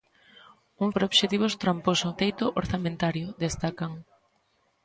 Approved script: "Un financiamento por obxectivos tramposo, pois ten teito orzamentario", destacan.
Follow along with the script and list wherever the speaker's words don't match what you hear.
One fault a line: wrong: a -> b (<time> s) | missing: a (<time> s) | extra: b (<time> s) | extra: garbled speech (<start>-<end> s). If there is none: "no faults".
missing: financiamento (0.9 s)
missing: pois ten (2.1 s)